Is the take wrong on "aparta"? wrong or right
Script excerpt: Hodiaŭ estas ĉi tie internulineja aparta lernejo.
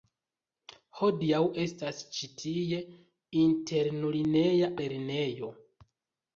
wrong